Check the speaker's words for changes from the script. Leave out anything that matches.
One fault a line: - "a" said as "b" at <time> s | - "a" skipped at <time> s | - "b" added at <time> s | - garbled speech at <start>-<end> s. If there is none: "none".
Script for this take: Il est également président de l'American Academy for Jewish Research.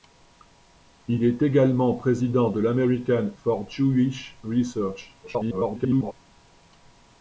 - "Academy" skipped at 3.3 s
- garbled speech at 5.2-6.1 s